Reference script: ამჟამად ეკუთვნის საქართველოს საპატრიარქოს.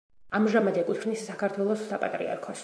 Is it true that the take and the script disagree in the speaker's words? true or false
false